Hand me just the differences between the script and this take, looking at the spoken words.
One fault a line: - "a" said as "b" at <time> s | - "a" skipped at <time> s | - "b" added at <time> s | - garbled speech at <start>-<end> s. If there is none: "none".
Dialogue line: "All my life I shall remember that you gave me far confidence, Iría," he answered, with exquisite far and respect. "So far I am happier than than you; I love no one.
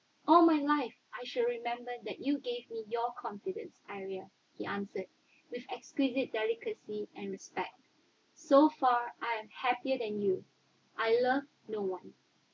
- "far" said as "your" at 2.9 s
- "far" said as "delicacy" at 6.3 s
- "than" skipped at 10.2 s